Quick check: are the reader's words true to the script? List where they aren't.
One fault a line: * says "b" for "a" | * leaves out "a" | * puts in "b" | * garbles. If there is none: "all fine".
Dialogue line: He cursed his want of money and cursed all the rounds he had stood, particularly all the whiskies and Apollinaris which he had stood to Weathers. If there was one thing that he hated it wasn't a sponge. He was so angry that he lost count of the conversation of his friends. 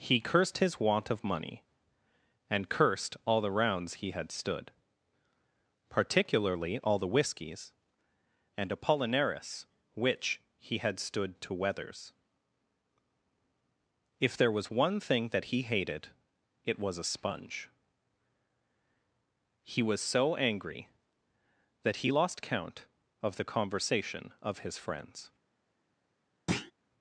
* says "was" for "wasn't"